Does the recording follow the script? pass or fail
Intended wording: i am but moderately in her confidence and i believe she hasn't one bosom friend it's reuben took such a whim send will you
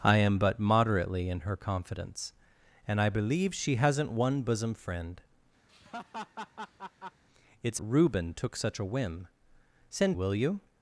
pass